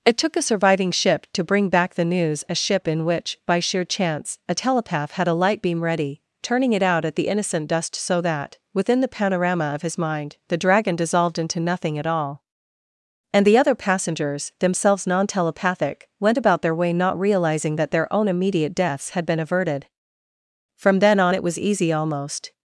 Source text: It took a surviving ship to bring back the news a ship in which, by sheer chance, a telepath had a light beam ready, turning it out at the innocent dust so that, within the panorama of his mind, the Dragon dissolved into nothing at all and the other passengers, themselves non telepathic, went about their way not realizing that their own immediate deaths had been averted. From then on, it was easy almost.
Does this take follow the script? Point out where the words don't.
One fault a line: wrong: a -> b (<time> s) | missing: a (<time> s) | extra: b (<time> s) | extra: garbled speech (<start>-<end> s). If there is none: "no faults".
no faults